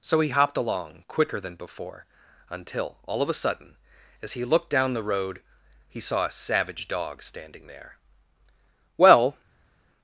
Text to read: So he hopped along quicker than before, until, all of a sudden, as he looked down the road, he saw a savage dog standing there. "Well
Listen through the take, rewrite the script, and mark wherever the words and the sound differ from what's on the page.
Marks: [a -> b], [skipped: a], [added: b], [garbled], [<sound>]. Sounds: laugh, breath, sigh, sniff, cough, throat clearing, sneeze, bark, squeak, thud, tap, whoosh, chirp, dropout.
So he hopped along quicker than before, until, all of a sudden, as he looked down the road, he saw a savage dog standing there. "Well